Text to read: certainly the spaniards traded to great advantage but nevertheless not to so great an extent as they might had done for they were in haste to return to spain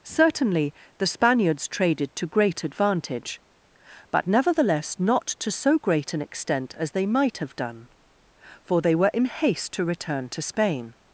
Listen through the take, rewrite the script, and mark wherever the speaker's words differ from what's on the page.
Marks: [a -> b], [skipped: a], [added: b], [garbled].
certainly the spaniards traded to great advantage but nevertheless not to so great an extent as they might [had -> have] done for they were in haste to return to spain